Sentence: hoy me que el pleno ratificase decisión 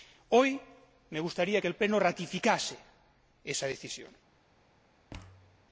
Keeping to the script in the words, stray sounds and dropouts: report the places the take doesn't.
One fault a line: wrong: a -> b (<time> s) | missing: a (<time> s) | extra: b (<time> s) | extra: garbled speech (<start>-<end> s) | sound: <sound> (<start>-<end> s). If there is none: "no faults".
extra: gustaría (1.2 s)
extra: esa (3.4 s)
sound: thud (5.1-5.7 s)